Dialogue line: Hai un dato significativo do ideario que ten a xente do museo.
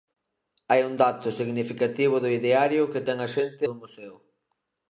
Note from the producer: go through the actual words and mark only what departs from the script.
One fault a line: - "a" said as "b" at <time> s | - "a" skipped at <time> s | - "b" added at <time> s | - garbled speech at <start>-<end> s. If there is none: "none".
none